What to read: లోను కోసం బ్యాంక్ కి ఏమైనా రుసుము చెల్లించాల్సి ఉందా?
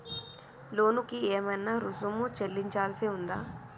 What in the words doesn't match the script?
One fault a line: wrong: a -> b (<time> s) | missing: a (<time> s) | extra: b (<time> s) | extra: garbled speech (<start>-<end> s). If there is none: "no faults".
missing: కోసం బ్యాంక్ (1.0 s)